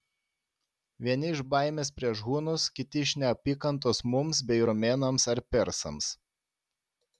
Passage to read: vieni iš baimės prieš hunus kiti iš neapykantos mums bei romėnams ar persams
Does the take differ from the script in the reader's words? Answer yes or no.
no